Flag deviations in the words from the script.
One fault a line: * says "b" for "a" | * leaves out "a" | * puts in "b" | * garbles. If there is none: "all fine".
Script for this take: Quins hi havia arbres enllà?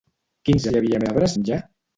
all fine